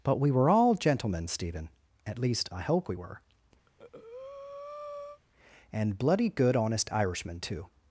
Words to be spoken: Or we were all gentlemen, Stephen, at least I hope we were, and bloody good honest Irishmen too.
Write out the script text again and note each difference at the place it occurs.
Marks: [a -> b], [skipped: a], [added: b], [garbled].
[Or -> But] we were all gentlemen, Stephen, at least I hope we were, and bloody good honest Irishmen too.